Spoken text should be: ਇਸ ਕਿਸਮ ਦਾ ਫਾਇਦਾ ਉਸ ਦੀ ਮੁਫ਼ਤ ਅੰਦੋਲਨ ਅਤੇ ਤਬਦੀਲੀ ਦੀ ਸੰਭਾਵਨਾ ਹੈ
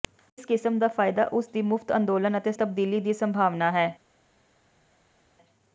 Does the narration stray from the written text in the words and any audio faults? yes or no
no